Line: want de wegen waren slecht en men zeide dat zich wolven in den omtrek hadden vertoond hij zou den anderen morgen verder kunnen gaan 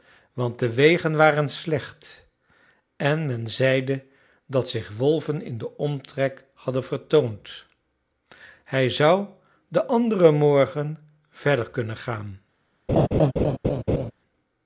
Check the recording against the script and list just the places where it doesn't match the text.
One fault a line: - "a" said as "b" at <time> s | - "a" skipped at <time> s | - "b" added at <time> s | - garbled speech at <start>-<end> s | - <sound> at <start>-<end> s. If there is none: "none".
- laugh at 12.9-14.1 s